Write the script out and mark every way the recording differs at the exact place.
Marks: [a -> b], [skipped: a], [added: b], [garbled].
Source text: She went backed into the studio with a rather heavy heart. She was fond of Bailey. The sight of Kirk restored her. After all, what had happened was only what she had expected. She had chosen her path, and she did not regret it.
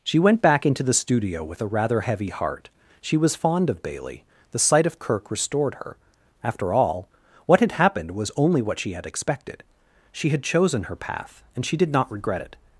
She went [backed -> back] into the studio with a rather heavy heart. She was fond of Bailey. The sight of Kirk restored her. After all, what had happened was only what she had expected. She had chosen her path, and she did not regret it.